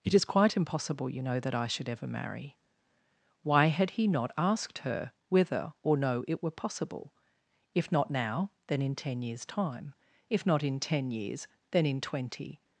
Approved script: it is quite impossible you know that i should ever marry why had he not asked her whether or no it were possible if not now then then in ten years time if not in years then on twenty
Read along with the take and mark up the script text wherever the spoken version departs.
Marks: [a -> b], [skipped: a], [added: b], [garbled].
it is quite impossible you know that i should ever marry why had he not asked her whether or no it were possible if not now then [skipped: then] in ten years time if not in [added: ten] years then [on -> in] twenty